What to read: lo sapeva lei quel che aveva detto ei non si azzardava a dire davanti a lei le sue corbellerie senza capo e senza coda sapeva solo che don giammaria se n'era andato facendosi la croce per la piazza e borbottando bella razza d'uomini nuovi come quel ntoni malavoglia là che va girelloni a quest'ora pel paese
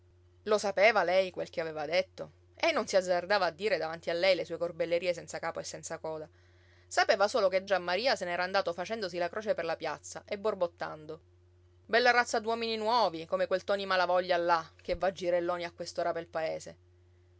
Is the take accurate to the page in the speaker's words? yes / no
no